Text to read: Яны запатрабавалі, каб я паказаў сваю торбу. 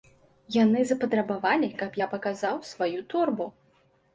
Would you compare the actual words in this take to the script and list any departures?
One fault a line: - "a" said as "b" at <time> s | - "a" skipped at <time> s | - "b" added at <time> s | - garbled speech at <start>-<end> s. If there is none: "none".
none